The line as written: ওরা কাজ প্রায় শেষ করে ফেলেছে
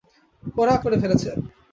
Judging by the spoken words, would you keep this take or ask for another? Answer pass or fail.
fail